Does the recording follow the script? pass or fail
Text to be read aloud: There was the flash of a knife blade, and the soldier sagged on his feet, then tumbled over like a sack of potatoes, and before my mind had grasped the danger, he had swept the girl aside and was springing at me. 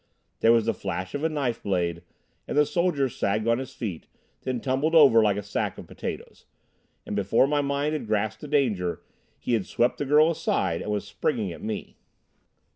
pass